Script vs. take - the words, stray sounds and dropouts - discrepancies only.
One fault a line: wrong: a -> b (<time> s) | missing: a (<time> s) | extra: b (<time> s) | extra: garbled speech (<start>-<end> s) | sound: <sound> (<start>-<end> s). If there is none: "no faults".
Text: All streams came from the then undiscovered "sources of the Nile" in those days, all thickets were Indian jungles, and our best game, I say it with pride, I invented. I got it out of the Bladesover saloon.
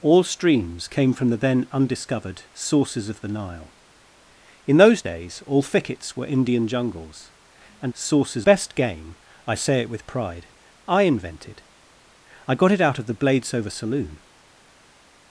wrong: our -> sources (7.9 s)